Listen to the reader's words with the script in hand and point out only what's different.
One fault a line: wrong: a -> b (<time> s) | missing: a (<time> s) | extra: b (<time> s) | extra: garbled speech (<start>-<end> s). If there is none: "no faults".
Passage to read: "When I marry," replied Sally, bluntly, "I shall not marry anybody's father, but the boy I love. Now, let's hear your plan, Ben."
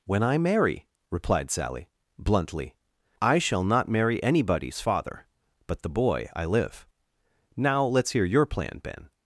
wrong: love -> live (6.5 s)